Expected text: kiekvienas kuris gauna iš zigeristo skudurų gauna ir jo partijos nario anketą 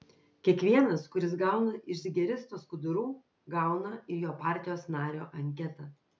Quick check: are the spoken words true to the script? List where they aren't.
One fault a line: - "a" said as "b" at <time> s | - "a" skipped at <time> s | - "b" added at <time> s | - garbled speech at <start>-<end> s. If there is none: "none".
none